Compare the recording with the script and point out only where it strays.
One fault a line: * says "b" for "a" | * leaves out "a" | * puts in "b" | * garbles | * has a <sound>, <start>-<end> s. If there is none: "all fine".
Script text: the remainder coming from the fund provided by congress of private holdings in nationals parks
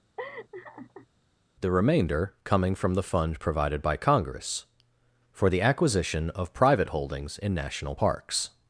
* has a laugh, 0.2-1.1 s
* puts in "for the acquisition"
* says "national" for "nationals"